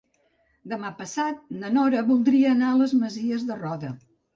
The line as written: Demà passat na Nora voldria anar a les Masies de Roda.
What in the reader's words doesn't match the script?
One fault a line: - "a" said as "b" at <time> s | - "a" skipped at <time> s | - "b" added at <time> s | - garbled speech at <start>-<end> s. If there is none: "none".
none